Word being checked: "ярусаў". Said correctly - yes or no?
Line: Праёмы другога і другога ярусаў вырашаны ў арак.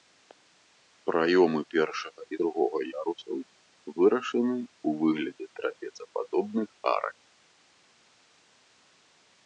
yes